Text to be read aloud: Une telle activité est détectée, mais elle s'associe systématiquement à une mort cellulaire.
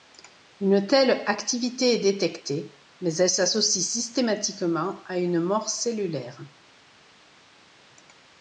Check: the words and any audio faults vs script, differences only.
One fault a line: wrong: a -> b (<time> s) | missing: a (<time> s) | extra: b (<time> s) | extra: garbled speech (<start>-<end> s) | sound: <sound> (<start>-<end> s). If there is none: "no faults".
no faults